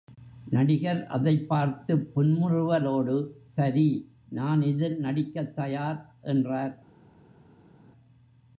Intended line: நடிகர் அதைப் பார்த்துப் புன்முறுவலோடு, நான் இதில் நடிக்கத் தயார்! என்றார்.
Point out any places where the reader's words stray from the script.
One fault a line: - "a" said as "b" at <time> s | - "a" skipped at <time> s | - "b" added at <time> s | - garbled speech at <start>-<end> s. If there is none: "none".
- "சரி" added at 3.5 s